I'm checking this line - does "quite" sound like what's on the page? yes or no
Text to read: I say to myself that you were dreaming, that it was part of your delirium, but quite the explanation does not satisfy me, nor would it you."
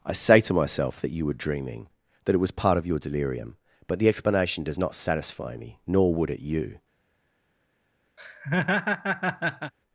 no